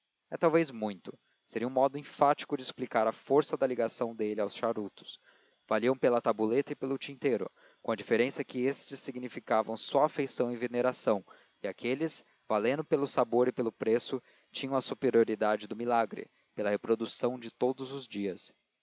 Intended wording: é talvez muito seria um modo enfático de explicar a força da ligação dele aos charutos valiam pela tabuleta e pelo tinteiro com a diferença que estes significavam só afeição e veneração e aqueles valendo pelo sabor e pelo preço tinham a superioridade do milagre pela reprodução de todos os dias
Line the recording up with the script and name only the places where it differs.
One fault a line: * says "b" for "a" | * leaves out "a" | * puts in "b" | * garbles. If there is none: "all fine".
all fine